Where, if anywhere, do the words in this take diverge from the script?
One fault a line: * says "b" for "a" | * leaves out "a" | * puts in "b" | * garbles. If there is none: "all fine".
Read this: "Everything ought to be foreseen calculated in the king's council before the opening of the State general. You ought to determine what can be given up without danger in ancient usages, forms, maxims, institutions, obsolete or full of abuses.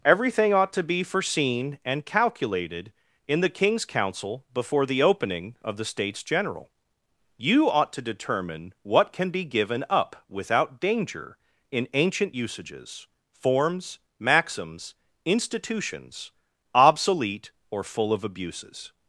* puts in "and"
* says "States" for "State"